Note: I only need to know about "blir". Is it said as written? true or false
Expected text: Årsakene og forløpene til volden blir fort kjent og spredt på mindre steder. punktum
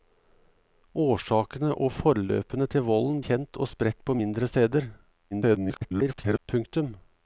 false